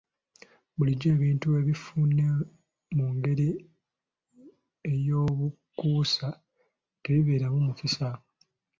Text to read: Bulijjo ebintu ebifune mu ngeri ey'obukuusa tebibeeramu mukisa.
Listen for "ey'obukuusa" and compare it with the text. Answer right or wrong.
right